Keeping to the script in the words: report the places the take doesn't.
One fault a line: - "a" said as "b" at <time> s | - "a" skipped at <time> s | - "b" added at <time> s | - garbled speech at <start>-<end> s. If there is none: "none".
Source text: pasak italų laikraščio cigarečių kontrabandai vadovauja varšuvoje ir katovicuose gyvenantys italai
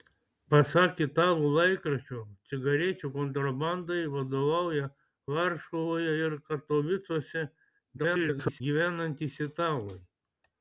- garbled speech at 8.0-8.6 s